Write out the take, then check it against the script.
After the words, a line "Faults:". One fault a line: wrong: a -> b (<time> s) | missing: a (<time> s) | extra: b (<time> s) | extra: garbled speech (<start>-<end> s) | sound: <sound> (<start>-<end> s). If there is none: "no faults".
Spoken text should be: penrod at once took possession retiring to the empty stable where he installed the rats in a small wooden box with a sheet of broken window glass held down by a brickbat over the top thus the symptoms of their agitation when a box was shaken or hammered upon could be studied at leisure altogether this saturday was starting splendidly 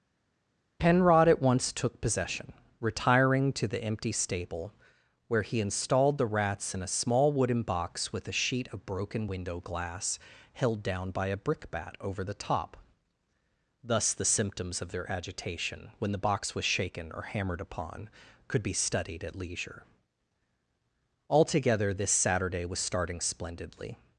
penrod at once took possession retiring to the empty stable where he installed the rats in a small wooden box with a sheet of broken window glass held down by a brickbat over the top thus the symptoms of their agitation when the box was shaken or hammered upon could be studied at leisure altogether this saturday was starting splendidly
Faults:
wrong: a -> the (16.1 s)